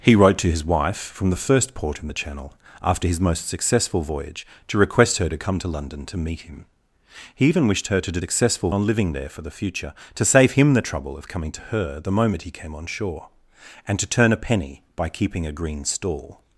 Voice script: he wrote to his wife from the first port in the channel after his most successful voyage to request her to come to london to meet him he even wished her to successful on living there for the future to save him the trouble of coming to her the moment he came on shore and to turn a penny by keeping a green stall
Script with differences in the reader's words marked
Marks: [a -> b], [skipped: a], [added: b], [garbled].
he wrote to his wife from the first port in the channel after his most successful voyage to request her to come to london to meet him he even wished her to successful on living there for the future to save him the trouble of coming to her the moment he came on shore and to turn a penny by keeping a green stall